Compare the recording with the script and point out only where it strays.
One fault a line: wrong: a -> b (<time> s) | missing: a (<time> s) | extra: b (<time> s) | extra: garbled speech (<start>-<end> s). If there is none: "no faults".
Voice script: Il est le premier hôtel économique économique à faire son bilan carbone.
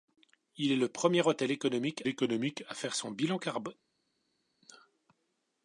no faults